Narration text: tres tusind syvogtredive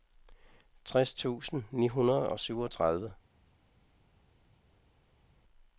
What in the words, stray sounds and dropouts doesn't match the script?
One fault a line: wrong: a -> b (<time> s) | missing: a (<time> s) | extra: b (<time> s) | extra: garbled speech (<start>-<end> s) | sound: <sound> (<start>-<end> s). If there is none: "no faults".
extra: ni hundrede og (1.7 s)